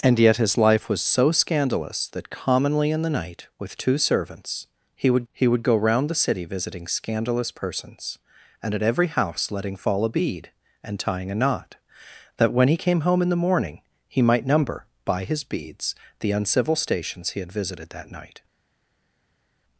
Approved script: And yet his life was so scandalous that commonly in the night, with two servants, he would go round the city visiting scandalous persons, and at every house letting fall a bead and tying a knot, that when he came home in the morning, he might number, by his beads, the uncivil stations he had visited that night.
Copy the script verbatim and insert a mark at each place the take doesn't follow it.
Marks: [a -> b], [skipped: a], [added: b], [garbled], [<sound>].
And yet his life was so scandalous that commonly in the night, with two servants, he would [added: he would] go round the city visiting scandalous persons, and at every house letting fall a bead and tying a knot, that when he came home in the morning, he might number, by his beads, the uncivil stations he had visited that night.